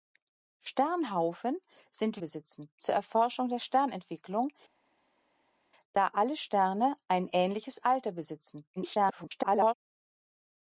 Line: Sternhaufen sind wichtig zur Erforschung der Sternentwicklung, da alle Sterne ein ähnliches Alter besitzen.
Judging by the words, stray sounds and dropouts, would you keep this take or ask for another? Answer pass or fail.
fail